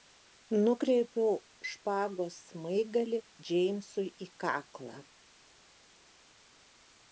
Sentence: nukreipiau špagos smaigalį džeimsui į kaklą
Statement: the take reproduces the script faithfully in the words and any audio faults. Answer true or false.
true